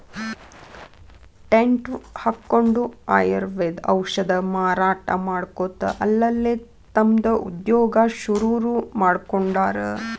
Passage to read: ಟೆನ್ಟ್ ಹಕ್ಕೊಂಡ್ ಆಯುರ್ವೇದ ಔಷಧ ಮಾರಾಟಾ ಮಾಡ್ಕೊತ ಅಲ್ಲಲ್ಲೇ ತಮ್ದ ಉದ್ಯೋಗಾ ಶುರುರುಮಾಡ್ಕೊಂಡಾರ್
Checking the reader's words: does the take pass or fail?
pass